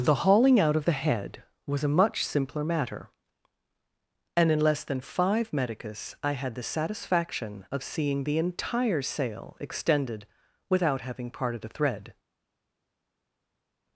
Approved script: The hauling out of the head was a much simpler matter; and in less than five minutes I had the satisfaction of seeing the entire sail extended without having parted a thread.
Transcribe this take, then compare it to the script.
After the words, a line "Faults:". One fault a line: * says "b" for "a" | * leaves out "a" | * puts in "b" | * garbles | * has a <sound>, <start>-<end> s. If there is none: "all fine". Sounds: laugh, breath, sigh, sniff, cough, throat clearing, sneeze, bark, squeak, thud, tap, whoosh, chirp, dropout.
The hauling out of the head was a much simpler matter; and in less than five medicus I had the satisfaction of seeing the entire sail extended without having parted a thread.
Faults:
* says "medicus" for "minutes"